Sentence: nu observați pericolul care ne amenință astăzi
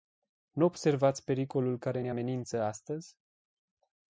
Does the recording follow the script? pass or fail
pass